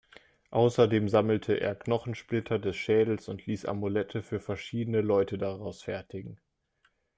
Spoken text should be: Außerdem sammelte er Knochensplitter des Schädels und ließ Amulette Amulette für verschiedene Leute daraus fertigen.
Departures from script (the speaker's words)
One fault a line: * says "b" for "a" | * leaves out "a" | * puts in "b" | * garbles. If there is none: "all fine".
* leaves out "Amulette"